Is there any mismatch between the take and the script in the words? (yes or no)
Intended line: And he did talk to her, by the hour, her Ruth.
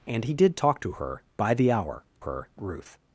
no